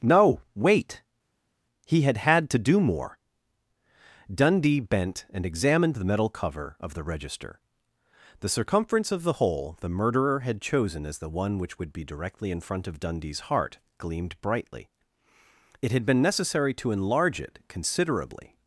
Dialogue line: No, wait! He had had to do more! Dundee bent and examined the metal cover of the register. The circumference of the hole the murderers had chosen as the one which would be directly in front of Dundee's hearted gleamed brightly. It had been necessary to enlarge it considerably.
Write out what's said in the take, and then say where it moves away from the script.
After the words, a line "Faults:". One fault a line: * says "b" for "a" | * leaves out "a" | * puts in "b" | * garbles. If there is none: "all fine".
No, wait! He had had to do more! Dundee bent and examined the metal cover of the register. The circumference of the hole the murderer had chosen as the one which would be directly in front of Dundee's heart gleamed brightly. It had been necessary to enlarge it considerably.
Faults:
* says "murderer" for "murderers"
* says "heart" for "hearted"